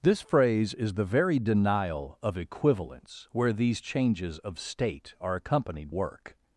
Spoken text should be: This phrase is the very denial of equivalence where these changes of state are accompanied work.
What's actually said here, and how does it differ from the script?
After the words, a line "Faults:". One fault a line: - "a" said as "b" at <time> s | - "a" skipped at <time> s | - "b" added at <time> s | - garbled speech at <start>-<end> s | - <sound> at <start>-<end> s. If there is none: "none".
This phrase is the very denial of equivalence where these changes of state are accompanied work.
Faults:
none